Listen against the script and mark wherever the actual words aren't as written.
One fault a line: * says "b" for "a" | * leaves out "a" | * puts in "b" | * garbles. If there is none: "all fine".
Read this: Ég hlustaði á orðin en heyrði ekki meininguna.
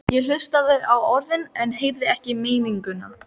all fine